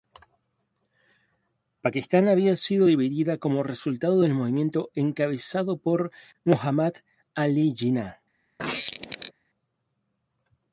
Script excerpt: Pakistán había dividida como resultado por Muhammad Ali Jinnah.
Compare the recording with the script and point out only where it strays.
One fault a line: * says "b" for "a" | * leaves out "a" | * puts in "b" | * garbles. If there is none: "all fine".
* puts in "sido"
* puts in "del movimiento encabezado"